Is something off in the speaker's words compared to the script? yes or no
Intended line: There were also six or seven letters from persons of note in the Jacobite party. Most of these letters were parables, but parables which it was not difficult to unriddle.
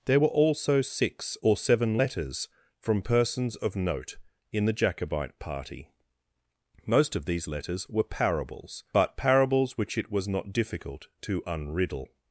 no